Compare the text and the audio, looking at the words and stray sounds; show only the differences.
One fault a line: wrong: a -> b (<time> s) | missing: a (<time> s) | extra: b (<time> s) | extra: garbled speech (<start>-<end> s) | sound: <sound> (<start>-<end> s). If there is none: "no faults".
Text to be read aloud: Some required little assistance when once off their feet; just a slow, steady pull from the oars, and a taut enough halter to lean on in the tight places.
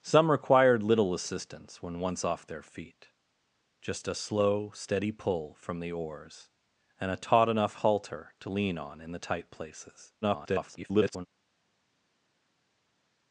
extra: garbled speech (10.2-11.3 s)